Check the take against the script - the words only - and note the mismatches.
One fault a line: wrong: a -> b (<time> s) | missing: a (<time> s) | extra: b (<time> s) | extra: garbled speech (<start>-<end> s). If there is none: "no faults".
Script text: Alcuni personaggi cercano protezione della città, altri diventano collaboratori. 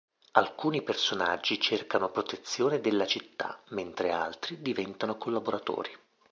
extra: mentre (3.7 s)